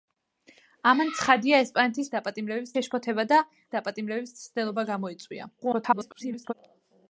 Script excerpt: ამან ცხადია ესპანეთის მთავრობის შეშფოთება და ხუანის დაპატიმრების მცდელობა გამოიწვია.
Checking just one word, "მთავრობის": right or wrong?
wrong